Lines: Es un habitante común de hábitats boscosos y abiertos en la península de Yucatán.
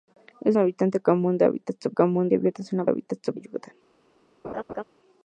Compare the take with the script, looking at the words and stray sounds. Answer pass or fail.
fail